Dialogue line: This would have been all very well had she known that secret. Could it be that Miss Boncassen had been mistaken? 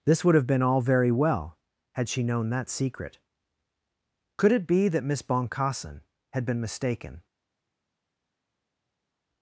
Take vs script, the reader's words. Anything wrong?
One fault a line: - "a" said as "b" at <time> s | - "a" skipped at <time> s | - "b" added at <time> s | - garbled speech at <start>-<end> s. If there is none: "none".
none